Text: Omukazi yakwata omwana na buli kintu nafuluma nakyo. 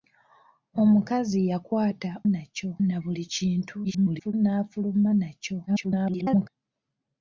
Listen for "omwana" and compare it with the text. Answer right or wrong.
wrong